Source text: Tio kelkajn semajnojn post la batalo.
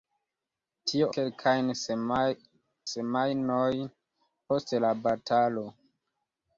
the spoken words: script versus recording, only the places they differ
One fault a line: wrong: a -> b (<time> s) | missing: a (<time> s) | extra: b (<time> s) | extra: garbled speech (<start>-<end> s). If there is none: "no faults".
no faults